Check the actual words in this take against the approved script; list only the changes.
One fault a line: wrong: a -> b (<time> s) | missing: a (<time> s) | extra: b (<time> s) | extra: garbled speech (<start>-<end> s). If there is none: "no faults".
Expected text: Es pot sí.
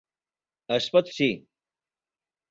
no faults